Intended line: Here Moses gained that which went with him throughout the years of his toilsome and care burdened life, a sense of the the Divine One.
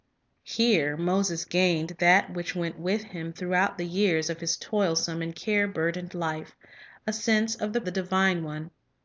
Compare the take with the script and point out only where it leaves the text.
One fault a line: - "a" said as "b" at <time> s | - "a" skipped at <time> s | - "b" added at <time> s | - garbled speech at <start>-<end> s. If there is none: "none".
none